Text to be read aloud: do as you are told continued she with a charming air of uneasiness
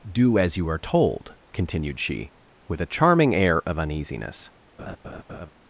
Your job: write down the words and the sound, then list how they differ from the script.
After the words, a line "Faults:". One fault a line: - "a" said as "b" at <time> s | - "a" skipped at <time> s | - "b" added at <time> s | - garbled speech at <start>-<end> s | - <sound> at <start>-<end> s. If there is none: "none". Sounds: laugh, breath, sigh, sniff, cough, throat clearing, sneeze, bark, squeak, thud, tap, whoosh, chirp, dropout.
do as you are told continued she with a charming air of uneasiness
Faults:
- laugh at 4.8-5.5 s